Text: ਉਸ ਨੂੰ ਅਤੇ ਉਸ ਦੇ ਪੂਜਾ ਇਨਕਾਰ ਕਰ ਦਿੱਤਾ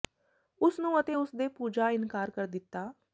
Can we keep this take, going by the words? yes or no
yes